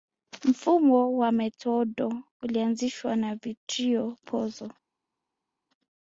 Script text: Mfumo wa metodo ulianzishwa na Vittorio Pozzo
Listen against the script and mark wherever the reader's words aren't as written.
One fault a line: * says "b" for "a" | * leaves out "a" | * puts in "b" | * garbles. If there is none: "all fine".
all fine